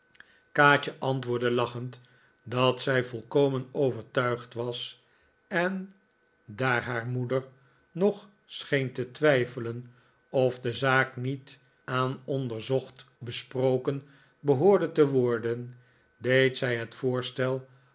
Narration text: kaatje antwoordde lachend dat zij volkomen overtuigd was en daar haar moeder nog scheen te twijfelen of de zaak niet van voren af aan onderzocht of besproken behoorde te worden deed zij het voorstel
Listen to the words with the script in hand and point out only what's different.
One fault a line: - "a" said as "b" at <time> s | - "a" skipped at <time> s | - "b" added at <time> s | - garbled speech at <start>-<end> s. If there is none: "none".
- "van voren af" skipped at 11.6 s
- "of" skipped at 13.0 s